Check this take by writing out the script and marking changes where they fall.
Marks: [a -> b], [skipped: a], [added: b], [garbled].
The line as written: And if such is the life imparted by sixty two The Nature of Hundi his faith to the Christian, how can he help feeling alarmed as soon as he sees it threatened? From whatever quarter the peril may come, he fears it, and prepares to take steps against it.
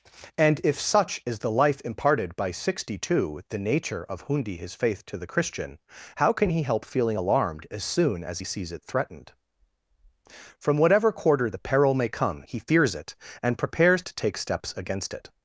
And if such is the life imparted by sixty two The Nature of Hundi his faith to the Christian, how can he help feeling alarmed as soon as he sees it threatened? From whatever quarter the peril may come, he fears it, and prepares to take steps against it.